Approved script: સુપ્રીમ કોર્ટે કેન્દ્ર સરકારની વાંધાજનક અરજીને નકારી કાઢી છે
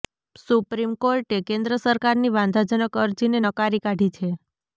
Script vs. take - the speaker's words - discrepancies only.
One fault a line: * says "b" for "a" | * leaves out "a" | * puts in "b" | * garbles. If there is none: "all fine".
all fine